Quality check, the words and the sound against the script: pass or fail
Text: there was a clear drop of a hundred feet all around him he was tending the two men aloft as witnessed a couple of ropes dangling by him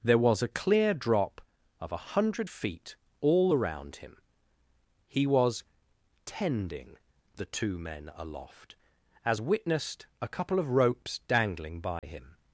fail